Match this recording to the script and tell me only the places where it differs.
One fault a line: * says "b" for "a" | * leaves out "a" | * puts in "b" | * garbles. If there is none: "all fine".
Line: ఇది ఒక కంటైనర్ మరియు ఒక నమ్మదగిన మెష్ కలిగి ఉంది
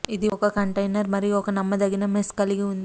all fine